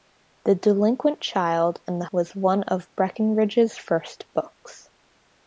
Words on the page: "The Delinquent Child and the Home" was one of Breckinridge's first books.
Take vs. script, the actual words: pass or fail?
fail